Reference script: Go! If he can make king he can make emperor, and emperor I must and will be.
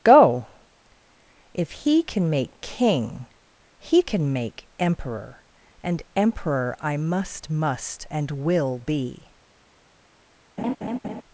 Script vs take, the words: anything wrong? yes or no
yes